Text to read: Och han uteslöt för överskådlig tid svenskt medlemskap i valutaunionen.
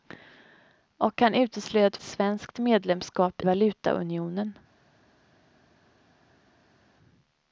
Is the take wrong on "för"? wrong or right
wrong